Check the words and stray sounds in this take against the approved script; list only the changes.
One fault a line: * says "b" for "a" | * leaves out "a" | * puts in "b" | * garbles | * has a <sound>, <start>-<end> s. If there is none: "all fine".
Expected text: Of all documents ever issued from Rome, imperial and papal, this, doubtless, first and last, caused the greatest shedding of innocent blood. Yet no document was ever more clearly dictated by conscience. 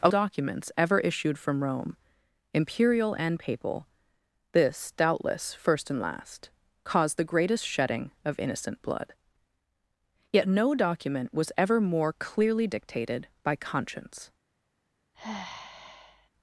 * leaves out "all"
* has a sigh, 15.1-16.3 s